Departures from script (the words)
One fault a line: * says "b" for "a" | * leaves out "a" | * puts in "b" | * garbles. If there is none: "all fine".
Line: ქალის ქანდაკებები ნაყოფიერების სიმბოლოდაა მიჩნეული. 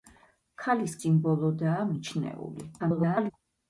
* leaves out "ქანდაკებები ნაყოფიერების"
* garbles